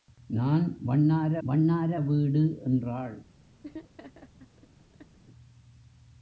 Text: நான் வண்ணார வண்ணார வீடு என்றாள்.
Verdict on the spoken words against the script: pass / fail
pass